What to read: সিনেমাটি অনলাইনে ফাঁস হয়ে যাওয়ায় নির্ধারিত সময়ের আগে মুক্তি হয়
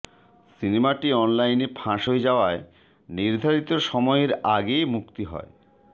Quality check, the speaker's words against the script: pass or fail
pass